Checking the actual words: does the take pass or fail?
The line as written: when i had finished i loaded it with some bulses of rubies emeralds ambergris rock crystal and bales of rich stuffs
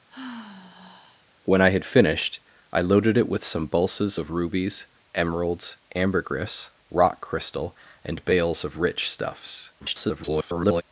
fail